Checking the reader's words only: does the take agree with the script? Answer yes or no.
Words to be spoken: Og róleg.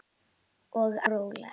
yes